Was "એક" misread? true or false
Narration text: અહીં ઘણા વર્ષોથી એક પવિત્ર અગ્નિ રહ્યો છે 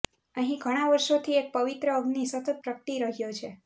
false